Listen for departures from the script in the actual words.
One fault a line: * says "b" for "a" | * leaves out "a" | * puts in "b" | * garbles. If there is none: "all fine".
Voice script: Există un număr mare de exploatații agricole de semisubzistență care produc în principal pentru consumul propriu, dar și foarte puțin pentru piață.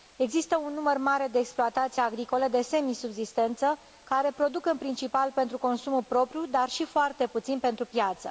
all fine